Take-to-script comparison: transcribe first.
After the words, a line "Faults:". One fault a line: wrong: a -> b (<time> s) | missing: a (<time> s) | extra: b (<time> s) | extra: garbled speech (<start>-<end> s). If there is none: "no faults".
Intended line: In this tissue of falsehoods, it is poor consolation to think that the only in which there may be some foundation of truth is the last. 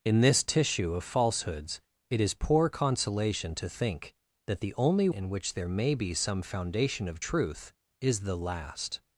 In this tissue of falsehoods, it is poor consolation to think that the only in which there may be some foundation of truth is the last.
Faults:
no faults